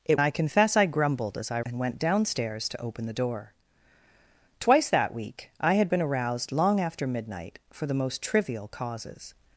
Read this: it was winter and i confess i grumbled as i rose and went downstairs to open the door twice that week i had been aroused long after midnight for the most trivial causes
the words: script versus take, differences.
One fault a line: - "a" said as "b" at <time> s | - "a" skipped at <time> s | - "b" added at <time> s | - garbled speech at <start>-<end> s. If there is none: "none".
- "was winter and" skipped at 0.2 s
- "rose" skipped at 1.6 s